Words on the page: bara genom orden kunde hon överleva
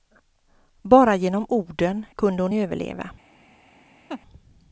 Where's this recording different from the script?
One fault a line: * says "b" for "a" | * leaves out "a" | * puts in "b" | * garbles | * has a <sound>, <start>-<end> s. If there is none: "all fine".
* has a laugh, 4.1-4.2 s